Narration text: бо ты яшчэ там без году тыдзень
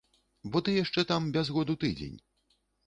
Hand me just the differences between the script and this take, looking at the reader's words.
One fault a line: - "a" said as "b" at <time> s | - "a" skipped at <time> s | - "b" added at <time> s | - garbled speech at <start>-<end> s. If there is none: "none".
none